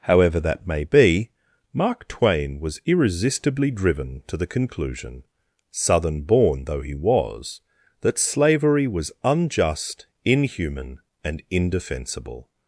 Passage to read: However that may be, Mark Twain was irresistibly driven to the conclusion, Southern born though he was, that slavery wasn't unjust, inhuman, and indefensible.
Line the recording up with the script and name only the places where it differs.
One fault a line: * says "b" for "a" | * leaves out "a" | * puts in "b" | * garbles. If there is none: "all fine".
* says "was" for "wasn't"